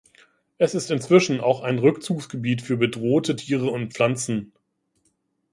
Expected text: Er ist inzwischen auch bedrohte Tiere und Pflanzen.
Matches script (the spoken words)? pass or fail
fail